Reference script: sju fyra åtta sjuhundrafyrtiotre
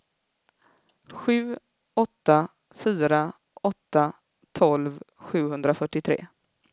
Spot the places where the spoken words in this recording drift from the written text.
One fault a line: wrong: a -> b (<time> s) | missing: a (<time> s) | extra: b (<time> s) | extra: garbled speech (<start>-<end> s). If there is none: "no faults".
extra: åtta (1.9 s)
extra: tolv (4.5 s)